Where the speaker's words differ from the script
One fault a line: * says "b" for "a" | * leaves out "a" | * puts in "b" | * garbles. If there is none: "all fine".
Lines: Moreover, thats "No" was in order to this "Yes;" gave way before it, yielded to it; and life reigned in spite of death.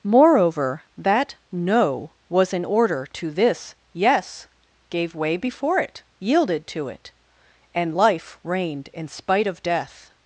* says "that" for "thats"